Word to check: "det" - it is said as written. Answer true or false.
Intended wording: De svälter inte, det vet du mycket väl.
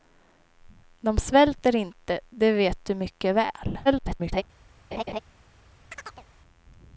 true